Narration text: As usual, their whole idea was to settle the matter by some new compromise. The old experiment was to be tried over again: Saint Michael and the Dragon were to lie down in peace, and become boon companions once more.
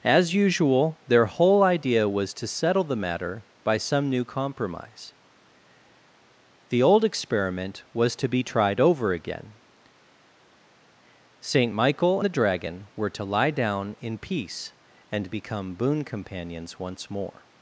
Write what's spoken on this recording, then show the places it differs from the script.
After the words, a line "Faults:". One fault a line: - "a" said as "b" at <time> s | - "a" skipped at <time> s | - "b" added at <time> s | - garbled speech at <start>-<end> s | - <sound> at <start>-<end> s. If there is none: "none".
As usual, their whole idea was to settle the matter by some new compromise. The old experiment was to be tried over again: Saint Michael the Dragon were to lie down in peace, and become boon companions once more.
Faults:
- "and" skipped at 12.2 s